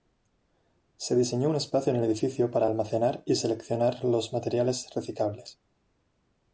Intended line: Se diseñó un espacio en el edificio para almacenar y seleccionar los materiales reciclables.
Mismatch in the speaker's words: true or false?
false